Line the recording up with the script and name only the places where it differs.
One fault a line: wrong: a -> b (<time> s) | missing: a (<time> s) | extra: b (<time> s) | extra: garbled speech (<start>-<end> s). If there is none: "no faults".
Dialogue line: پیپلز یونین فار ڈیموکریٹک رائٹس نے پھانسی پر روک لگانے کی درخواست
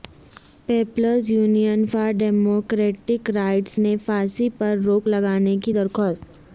no faults